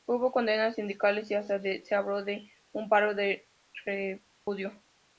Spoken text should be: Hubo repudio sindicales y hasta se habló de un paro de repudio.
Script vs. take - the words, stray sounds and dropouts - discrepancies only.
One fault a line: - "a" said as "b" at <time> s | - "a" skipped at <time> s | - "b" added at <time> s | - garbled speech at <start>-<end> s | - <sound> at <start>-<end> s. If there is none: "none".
- "repudio" said as "condenas" at 0.3 s
- dropout at 4.3-4.5 s